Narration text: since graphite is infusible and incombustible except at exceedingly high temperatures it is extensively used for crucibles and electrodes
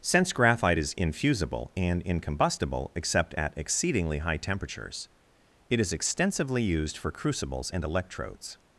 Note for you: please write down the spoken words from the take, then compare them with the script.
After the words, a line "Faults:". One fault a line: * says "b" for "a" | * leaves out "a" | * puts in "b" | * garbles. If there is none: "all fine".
since graphite is infusible and incombustible except at exceedingly high temperatures it is extensively used for crucibles and electrodes
Faults:
all fine